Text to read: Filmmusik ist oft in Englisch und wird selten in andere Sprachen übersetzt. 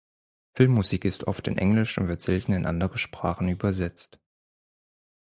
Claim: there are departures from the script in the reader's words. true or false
false